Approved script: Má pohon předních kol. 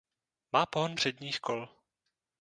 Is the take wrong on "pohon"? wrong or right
right